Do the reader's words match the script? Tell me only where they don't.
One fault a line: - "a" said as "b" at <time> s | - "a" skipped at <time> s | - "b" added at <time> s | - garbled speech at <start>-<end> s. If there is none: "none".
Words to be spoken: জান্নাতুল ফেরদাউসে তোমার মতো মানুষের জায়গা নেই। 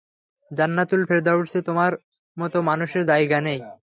none